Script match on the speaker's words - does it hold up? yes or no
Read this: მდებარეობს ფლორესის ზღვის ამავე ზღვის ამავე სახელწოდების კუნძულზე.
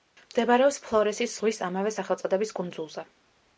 no